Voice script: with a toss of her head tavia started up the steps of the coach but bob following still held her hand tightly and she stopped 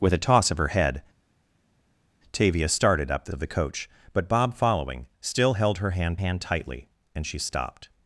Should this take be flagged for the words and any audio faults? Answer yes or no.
yes